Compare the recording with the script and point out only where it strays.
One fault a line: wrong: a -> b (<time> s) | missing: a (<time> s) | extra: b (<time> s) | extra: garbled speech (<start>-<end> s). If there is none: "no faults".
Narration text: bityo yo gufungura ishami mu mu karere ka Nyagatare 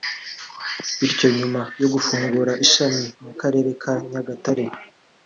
extra: nyuma (1.4 s)
missing: mu (3.3 s)